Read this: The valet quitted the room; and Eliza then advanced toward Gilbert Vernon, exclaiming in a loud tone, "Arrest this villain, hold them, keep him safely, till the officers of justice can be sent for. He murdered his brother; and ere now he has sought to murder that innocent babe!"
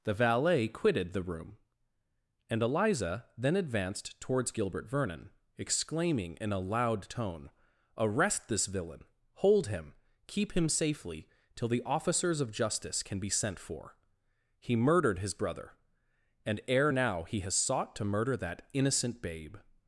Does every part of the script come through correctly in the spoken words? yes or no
no